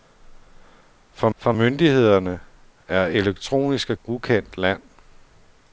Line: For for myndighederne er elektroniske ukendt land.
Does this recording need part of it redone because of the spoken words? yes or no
no